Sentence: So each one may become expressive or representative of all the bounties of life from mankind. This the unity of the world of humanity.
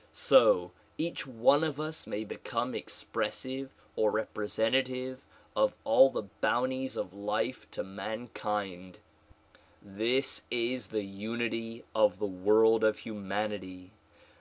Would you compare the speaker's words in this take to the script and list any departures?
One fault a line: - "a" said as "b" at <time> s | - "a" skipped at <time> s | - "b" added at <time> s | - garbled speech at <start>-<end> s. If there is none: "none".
- "of us" added at 1.6 s
- "from" said as "to" at 7.7 s
- "is" added at 10.5 s